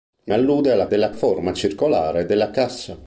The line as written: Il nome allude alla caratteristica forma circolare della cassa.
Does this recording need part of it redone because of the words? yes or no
yes